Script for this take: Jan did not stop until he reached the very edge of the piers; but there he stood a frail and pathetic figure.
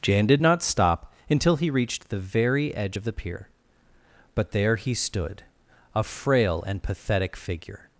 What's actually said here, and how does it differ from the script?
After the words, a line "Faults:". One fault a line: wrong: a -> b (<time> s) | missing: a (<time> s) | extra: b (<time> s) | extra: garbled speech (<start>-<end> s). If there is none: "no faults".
Jan did not stop until he reached the very edge of the pier; but there he stood a frail and pathetic figure.
Faults:
wrong: piers -> pier (3.1 s)